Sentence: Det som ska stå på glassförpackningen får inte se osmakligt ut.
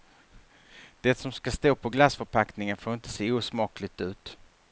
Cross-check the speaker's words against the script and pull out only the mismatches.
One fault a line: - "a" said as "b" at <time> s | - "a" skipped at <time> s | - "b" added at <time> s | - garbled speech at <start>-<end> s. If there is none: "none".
none